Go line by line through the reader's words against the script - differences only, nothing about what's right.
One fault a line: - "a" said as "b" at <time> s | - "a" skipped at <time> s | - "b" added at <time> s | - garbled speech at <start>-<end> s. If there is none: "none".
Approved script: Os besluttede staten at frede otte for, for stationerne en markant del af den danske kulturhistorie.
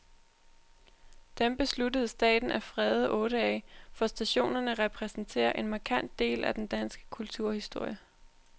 - "Os" said as "Dem" at 1.4 s
- "for" said as "af" at 3.4 s
- "repræsenterer" added at 4.7 s